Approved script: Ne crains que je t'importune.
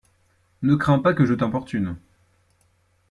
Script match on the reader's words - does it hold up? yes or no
no